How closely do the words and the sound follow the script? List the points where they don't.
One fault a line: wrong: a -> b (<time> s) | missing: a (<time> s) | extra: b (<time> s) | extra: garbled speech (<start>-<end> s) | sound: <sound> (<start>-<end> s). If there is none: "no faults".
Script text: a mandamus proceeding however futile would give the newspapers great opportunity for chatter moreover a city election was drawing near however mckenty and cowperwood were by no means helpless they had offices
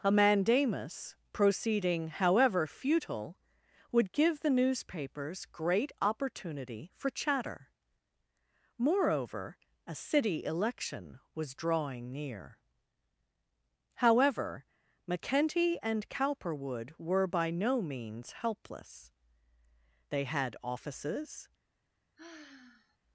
sound: sigh (22.2-23.0 s)